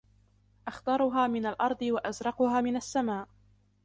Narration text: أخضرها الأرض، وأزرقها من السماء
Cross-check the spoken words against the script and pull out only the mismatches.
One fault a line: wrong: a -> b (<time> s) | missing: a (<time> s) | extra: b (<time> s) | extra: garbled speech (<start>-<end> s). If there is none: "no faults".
extra: من (1.3 s)